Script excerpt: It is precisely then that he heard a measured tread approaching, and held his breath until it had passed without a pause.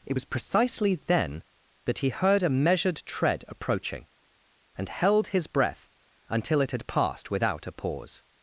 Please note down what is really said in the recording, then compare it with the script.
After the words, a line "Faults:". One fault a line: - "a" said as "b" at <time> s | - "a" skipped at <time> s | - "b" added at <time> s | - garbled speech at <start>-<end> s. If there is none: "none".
It was precisely then that he heard a measured tread approaching, and held his breath until it had passed without a pause.
Faults:
- "is" said as "was" at 0.1 s